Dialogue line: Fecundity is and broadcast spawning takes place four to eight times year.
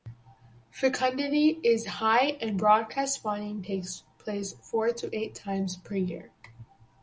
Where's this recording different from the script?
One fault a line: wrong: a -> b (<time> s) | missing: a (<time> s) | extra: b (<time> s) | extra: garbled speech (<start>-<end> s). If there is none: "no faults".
extra: high (1.9 s)
extra: per (5.7 s)